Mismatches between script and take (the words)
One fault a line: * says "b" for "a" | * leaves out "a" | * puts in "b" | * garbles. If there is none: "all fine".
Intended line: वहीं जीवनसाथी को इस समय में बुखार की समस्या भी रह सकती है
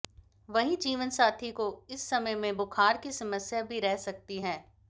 all fine